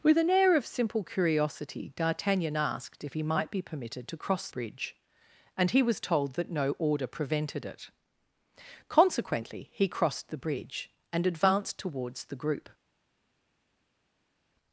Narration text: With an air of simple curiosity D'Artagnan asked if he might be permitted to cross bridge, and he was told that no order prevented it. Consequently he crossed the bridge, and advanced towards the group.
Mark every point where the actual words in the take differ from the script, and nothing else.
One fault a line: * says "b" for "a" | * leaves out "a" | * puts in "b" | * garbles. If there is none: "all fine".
all fine